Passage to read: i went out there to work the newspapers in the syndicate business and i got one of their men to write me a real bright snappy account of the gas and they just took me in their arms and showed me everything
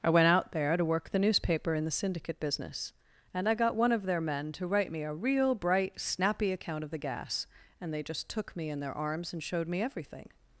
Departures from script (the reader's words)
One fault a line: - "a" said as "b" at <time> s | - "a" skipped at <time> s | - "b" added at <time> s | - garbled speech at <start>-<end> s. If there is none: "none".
- "newspapers" said as "newspaper" at 1.2 s